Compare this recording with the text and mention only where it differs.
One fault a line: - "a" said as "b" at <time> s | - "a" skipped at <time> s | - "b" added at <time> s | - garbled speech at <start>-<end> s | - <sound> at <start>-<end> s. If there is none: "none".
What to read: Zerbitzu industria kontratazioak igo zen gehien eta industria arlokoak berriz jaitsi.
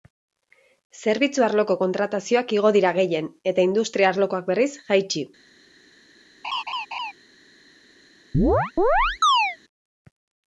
- "industria" said as "arloko" at 1.5 s
- "zen" said as "dira" at 2.8 s
- laugh at 6.4-7.1 s
- chirp at 8.3-9.6 s